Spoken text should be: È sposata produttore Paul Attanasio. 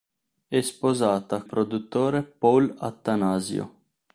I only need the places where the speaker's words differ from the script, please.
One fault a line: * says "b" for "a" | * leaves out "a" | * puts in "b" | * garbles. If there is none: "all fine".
all fine